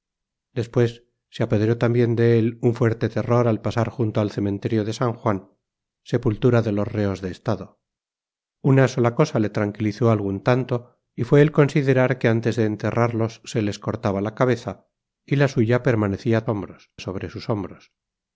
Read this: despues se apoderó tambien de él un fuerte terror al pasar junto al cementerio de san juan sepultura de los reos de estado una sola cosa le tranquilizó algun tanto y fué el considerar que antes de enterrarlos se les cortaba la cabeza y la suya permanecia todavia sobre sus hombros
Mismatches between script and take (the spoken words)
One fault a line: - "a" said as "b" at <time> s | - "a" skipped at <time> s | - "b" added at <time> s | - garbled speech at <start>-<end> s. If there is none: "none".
- "todavia" said as "hombros" at 16.5 s